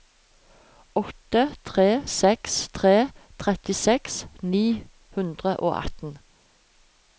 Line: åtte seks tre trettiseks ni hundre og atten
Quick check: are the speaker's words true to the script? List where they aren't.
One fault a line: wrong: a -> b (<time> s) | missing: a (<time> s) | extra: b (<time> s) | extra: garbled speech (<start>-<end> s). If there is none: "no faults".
extra: tre (1.7 s)